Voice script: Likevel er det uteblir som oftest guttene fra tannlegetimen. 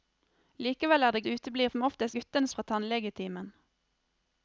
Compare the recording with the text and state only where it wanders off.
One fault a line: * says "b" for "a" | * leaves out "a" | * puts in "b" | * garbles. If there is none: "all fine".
all fine